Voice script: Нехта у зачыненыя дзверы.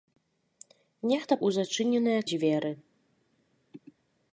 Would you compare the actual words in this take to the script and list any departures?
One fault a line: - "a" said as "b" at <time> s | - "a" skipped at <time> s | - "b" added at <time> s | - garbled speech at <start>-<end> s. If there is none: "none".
none